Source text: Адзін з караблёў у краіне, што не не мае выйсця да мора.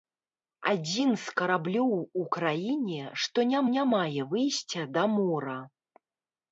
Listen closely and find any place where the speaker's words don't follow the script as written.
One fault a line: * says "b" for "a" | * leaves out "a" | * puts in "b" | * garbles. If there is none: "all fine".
all fine